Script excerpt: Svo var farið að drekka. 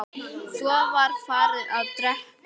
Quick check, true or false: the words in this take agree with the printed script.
true